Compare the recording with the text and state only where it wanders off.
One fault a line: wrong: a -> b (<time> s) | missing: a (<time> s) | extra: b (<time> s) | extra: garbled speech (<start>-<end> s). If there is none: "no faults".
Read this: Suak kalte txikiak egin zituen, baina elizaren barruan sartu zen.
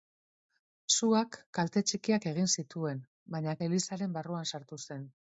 no faults